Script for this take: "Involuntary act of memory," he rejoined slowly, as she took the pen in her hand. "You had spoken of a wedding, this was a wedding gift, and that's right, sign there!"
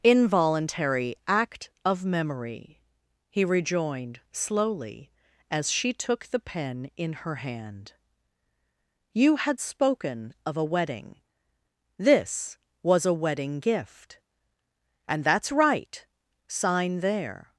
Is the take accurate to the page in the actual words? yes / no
yes